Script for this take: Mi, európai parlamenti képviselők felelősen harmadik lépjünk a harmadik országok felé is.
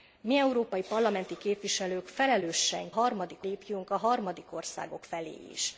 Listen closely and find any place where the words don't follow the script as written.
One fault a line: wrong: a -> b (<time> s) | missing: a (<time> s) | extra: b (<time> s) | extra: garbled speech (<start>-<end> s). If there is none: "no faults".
no faults